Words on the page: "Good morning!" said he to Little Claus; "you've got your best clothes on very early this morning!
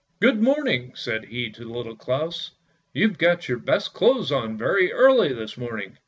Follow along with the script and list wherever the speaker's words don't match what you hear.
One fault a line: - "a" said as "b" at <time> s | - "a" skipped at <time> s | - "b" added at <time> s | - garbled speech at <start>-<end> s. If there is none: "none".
none